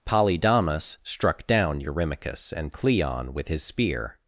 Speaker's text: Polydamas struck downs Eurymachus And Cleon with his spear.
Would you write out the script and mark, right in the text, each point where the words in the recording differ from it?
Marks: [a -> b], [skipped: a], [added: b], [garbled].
Polydamas struck [downs -> down] Eurymachus And Cleon with his spear.